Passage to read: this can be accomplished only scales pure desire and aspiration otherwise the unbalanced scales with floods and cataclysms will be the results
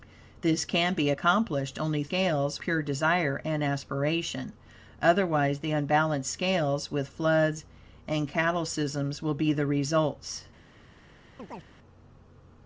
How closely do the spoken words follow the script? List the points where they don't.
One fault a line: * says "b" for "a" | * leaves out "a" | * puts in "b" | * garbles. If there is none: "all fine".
all fine